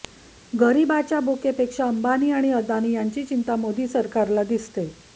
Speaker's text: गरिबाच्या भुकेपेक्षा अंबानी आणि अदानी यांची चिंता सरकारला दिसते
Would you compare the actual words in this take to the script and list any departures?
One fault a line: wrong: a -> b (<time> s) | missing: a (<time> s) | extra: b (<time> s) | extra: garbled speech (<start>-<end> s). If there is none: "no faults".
extra: मोदी (3.6 s)